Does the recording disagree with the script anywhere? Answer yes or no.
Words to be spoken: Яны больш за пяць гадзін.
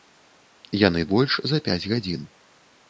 no